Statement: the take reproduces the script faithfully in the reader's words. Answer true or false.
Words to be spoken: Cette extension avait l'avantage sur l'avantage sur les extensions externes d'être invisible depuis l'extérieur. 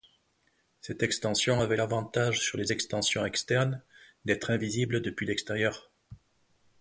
false